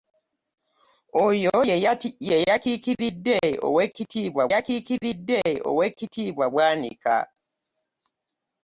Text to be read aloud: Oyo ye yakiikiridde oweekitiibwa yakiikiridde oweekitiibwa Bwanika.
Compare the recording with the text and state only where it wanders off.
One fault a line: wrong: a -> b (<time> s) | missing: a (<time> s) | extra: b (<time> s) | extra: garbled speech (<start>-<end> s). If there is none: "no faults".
no faults